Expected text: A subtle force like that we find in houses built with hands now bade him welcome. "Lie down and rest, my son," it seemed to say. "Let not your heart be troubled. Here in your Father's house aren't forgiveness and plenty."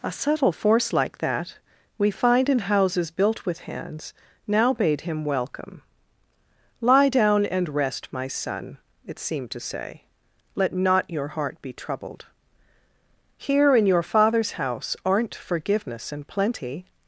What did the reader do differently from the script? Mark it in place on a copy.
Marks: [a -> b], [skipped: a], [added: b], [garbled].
A subtle force like that we find in houses built with hands now bade him welcome. "Lie down and rest, my son," it seemed to say. "Let not your heart be troubled. Here in your Father's house aren't forgiveness and plenty."